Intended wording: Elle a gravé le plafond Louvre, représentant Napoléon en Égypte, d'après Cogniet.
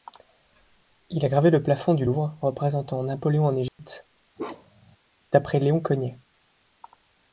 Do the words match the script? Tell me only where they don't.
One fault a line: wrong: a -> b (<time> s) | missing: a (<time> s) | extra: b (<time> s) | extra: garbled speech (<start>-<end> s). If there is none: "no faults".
wrong: Elle -> Il (1.1 s)
extra: du (1.9 s)
extra: Léon (5.6 s)